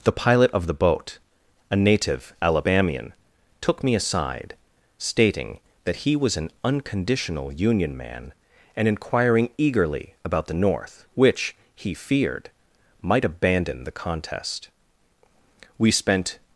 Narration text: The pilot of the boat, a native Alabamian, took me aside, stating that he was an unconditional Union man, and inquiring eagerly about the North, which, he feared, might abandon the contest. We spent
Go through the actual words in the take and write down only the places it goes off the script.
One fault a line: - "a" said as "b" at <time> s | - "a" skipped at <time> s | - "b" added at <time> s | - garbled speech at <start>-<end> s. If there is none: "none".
none